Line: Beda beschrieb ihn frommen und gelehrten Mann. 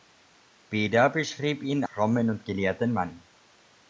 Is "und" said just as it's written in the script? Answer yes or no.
yes